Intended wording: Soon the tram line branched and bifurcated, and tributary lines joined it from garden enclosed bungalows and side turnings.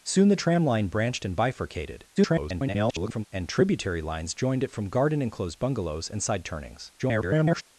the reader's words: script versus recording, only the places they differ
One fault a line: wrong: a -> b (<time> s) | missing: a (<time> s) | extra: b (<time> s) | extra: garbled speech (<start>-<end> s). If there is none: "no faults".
extra: garbled speech (2.2-3.3 s)
extra: garbled speech (7.0-7.6 s)